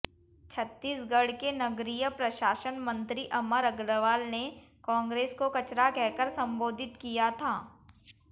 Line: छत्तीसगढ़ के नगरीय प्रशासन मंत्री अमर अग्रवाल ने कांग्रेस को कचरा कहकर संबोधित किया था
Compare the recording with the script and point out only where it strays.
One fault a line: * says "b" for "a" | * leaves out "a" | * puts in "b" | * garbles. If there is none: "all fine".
all fine